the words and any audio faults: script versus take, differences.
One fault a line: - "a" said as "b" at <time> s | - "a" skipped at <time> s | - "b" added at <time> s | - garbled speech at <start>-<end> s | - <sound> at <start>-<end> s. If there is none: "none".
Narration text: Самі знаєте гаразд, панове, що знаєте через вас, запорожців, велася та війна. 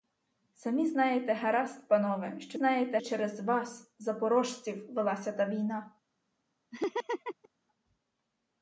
- laugh at 6.7-7.5 s